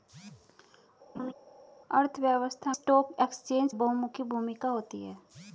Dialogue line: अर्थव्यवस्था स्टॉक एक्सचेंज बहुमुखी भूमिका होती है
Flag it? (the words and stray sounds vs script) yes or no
yes